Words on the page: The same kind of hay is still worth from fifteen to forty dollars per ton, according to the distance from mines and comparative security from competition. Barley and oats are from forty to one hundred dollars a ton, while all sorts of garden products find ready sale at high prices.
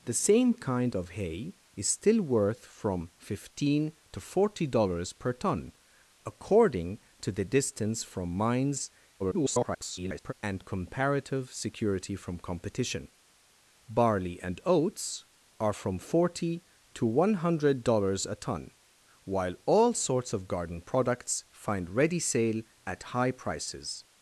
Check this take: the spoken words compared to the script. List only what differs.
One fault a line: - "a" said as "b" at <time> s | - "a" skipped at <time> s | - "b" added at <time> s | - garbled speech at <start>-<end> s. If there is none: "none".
- garbled speech at 9.2-10.3 s